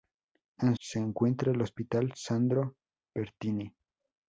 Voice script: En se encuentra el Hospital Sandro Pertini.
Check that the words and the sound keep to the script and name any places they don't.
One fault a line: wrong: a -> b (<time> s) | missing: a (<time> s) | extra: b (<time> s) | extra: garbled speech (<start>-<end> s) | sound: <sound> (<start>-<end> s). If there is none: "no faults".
no faults